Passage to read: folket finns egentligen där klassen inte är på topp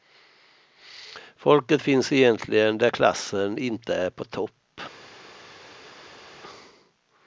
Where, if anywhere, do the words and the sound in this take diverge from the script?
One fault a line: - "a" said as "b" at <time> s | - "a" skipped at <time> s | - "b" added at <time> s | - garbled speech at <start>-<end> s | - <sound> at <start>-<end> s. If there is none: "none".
none